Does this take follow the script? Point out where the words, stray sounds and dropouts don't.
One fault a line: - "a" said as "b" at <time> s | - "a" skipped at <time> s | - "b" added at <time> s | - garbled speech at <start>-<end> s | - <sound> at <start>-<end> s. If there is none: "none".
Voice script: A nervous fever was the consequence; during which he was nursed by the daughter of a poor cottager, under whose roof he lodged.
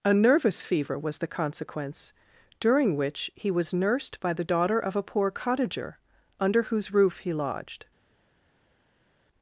none